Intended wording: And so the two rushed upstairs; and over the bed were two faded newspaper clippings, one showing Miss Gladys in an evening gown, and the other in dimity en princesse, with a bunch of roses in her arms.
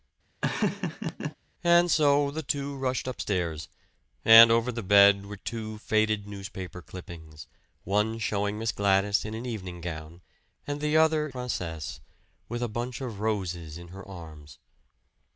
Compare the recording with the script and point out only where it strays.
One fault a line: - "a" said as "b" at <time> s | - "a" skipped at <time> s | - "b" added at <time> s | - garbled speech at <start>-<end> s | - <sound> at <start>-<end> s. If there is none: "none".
- laugh at 0.4-1.4 s
- "in dimity en" skipped at 11.3 s